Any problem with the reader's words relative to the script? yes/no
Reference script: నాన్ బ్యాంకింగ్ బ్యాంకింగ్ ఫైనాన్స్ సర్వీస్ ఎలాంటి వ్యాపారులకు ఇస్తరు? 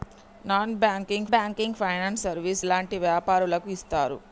no